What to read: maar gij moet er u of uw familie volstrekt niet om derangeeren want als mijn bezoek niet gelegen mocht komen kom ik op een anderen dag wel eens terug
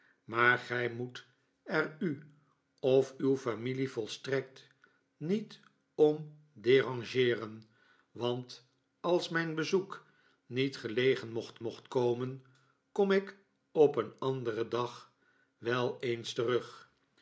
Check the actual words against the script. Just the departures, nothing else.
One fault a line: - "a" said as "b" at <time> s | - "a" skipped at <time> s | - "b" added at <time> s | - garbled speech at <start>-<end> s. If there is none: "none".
- "mocht" added at 11.6 s